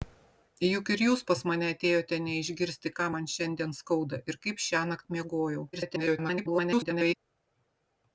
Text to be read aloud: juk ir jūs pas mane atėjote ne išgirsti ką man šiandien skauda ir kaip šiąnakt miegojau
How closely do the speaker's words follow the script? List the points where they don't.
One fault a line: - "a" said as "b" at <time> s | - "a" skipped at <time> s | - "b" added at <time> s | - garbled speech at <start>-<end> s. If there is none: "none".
- garbled speech at 5.7-7.2 s